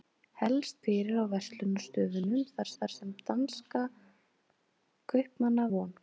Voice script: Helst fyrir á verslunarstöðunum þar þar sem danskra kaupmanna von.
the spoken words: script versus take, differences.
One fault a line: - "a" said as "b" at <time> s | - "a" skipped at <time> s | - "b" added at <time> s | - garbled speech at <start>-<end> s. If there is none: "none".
none